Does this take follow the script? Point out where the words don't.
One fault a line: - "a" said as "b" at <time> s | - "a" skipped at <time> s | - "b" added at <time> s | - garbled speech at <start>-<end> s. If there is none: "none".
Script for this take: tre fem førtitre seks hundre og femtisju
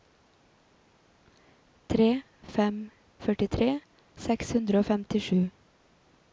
none